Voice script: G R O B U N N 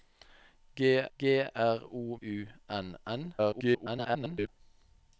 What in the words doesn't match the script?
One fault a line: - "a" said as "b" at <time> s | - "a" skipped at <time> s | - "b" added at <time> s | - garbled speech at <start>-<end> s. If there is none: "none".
- "g" added at 1.2 s
- "B" skipped at 2.2 s
- garbled speech at 3.4-4.5 s